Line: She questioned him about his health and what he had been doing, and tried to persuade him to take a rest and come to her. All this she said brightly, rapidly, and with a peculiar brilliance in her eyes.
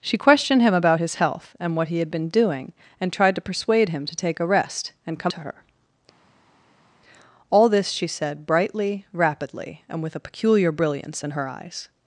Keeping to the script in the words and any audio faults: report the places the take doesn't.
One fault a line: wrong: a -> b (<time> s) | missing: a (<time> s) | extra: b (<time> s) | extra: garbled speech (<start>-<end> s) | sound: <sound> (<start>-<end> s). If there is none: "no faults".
no faults